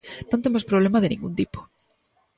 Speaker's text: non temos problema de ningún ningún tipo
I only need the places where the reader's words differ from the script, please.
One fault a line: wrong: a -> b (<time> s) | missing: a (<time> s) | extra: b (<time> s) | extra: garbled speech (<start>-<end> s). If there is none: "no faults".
missing: ningún (1.3 s)